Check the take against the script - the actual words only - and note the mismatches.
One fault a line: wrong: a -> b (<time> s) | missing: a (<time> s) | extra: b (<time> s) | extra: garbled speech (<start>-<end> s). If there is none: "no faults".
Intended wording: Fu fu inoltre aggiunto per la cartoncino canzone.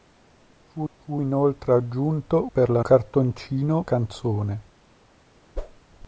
no faults